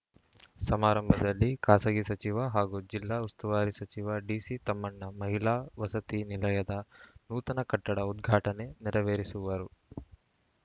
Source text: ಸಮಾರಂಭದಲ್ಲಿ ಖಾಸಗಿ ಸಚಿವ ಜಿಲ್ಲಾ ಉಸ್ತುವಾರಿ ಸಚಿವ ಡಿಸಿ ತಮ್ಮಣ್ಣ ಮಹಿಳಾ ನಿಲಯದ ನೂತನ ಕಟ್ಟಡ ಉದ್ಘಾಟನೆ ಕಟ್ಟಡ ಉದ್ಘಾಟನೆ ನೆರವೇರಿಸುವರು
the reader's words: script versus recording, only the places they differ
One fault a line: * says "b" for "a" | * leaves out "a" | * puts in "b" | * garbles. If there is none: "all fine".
* puts in "ಹಾಗೂ"
* puts in "ವಸತಿ"
* leaves out "ಕಟ್ಟಡ ಉದ್ಘಾಟನೆ"